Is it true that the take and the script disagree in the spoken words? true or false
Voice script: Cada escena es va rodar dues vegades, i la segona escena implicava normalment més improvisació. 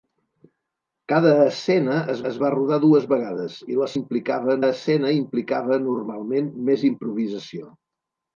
true